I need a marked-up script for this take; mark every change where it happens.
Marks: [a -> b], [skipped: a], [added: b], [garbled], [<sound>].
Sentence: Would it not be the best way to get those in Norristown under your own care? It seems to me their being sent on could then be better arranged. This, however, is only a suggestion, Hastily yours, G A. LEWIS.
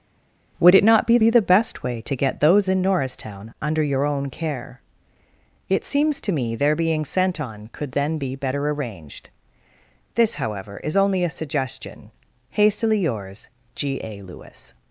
Would it not be [added: be] the best way to get those in Norristown under your own care? It seems to me their being sent on could then be better arranged. This, however, is only a suggestion, Hastily yours, G A. LEWIS.